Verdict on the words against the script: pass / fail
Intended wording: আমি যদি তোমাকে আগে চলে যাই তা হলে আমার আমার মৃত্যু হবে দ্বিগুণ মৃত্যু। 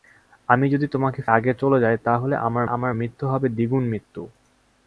pass